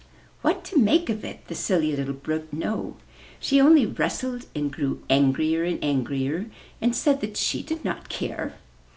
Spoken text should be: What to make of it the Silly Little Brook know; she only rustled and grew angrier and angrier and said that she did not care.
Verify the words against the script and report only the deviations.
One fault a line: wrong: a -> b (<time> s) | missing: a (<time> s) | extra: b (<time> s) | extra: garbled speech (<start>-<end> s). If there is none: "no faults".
no faults